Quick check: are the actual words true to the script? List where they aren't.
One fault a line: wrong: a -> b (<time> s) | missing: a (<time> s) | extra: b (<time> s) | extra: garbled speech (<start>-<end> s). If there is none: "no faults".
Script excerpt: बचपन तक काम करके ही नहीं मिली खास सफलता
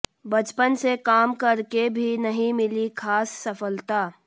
wrong: तक -> से (0.7 s)
wrong: ही -> भी (1.9 s)